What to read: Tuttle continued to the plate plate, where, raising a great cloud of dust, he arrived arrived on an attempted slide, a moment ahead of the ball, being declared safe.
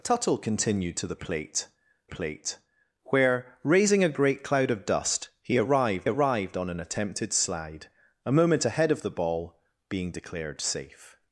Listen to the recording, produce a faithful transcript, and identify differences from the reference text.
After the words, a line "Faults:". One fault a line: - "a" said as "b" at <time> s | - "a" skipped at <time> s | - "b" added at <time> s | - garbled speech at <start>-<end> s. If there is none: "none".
Tuttle continued to the plate plate, where, raising a great cloud of dust, he arrived arrived on an attempted slide, a moment ahead of the ball, being declared safe.
Faults:
none